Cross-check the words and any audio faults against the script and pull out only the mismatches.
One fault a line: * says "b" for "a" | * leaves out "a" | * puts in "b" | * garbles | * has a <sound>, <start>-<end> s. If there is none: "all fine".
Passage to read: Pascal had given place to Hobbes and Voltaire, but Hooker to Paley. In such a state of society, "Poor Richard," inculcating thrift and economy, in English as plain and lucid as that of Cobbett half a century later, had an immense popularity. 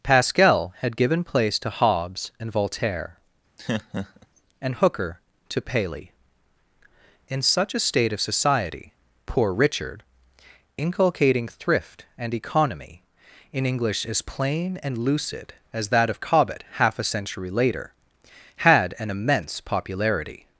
* has a laugh, 3.6-4.3 s
* says "and" for "but"